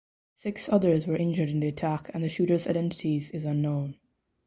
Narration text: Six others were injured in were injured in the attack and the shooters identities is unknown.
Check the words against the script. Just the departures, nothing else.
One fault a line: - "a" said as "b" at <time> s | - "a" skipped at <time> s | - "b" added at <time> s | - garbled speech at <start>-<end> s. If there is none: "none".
- "were injured in" skipped at 1.6 s